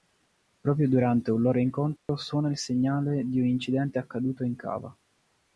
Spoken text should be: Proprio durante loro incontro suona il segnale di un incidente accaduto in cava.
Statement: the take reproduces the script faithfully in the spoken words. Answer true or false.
false